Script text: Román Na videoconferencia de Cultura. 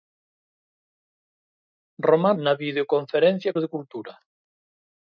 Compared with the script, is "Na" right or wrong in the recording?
right